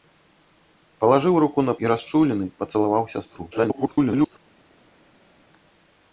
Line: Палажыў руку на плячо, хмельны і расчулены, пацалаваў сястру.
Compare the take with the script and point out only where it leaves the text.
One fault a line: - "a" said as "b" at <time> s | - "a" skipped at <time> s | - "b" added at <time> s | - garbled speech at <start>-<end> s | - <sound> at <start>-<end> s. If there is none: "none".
- "плячо хмельны" skipped at 1.8 s
- garbled speech at 3.5-4.4 s